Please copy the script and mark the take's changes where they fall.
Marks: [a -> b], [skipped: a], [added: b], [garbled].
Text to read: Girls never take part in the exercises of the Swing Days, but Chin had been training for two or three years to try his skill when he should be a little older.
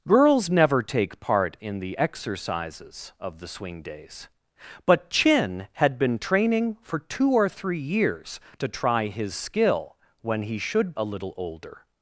Girls never take part in the exercises of the Swing Days, but Chin had been training for two or three years to try his skill when he should [skipped: be] a little older.